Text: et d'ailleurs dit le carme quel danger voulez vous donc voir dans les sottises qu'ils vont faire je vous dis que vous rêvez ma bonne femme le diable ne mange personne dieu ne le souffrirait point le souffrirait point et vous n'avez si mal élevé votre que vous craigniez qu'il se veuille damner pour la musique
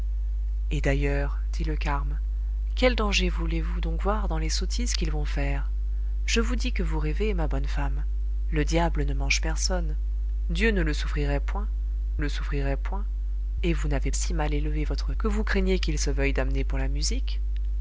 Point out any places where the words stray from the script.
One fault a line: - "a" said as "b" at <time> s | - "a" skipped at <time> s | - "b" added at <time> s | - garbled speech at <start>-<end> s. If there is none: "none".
none